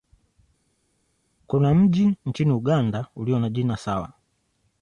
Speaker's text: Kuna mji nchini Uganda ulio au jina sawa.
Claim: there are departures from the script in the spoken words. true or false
true